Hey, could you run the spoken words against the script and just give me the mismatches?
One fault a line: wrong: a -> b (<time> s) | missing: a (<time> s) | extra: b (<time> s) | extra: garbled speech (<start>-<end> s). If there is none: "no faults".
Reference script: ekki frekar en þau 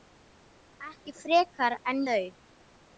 no faults